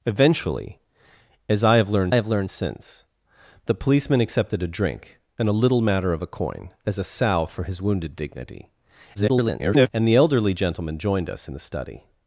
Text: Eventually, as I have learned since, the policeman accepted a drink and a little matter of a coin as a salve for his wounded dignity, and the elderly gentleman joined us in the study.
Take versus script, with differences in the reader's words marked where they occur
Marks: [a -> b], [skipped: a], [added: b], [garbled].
Eventually, as I have learned [added: have learned] since, the policeman accepted a drink and a little matter of a coin as a salve for his wounded dignity, [garbled] and the elderly gentleman joined us in the study.